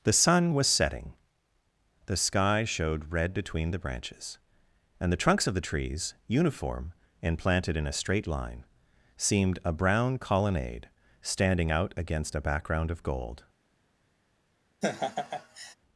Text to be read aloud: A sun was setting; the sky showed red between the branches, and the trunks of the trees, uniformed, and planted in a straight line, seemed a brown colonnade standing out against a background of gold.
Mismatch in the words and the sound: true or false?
true